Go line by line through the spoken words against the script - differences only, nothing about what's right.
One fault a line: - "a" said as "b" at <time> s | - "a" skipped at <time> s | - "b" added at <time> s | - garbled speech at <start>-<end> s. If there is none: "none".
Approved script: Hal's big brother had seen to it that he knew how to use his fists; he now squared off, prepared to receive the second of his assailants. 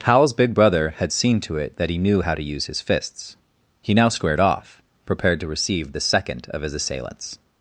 none